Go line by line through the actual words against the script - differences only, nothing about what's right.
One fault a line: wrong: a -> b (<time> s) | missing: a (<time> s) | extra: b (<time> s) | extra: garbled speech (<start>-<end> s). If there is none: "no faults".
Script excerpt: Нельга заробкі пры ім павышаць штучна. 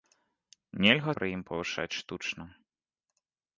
missing: заробкі (1.1 s)